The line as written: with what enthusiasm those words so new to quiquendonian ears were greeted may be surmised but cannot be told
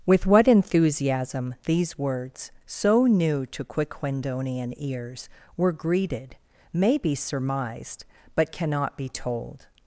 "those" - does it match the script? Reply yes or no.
no